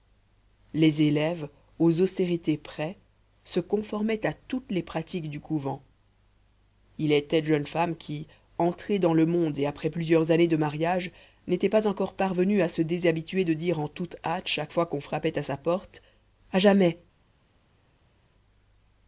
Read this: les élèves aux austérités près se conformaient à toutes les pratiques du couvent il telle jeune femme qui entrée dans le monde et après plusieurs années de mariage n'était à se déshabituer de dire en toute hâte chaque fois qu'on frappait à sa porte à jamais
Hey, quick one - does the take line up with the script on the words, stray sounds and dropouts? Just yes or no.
no